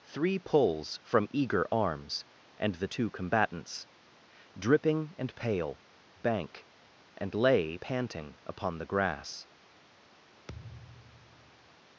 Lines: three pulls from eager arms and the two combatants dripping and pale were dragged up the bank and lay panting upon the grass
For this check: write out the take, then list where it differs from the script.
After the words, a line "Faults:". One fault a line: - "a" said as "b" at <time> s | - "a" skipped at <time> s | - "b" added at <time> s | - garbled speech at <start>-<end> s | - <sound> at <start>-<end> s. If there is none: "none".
three pulls from eager arms and the two combatants dripping and pale bank and lay panting upon the grass
Faults:
- "were dragged up the" skipped at 5.8 s
- thud at 10.5-11.8 s